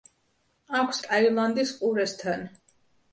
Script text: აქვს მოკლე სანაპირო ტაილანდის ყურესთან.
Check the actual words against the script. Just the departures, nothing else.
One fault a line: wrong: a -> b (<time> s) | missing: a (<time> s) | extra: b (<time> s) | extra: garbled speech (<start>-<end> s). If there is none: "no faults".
missing: მოკლე სანაპირო (1.0 s)